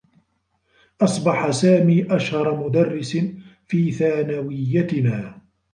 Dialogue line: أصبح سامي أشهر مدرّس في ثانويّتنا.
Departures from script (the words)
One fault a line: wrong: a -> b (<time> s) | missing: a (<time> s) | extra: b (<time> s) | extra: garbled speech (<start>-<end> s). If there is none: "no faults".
no faults